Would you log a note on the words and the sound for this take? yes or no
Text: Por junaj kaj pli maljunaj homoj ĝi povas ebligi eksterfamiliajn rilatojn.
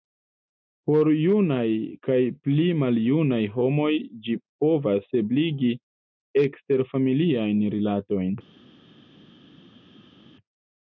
no